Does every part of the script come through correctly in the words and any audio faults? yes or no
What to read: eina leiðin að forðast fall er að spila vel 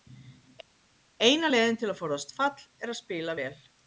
no